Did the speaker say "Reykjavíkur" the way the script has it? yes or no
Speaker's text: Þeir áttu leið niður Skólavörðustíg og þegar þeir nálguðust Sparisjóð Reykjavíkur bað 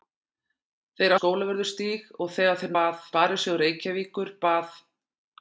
yes